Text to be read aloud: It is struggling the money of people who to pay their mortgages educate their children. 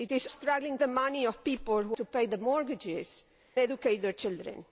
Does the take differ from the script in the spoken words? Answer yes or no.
no